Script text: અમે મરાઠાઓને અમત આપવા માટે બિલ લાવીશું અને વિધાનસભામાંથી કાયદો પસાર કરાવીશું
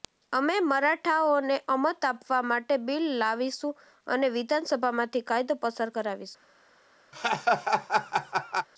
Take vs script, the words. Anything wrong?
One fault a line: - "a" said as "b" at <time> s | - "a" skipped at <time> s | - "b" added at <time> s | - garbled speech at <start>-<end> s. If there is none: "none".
none